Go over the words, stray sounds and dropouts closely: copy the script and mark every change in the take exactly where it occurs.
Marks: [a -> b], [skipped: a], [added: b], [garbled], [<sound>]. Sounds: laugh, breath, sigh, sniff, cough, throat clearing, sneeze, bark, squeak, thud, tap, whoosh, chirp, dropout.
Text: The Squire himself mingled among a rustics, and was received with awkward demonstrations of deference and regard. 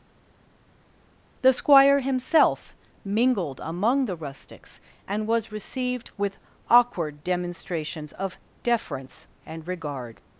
The Squire himself mingled among [a -> the] rustics, and was received with awkward demonstrations of deference and regard.